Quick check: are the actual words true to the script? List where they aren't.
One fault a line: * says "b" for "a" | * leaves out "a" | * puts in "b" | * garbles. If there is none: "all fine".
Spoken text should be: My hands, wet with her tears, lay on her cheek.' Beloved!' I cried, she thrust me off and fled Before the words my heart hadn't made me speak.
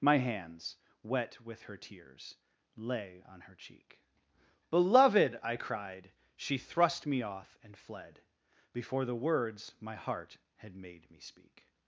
* says "had" for "hadn't"